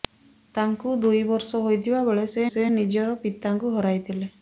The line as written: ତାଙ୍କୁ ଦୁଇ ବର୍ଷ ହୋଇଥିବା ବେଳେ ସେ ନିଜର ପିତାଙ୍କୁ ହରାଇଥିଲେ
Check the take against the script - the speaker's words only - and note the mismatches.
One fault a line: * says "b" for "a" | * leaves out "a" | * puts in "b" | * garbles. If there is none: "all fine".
* puts in "ସେ"